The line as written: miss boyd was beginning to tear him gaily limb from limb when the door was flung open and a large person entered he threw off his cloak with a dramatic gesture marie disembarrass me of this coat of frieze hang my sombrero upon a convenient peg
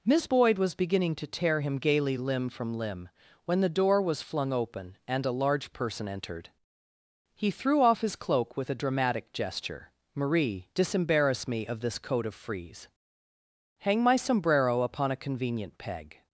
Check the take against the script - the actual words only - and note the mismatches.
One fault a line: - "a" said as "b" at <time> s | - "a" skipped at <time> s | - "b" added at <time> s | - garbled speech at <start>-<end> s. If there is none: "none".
none